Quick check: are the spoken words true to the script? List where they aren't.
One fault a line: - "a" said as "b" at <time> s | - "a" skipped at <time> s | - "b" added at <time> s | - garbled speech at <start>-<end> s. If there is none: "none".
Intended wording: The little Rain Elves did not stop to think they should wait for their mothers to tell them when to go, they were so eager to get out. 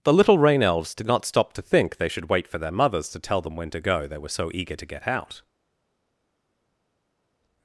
none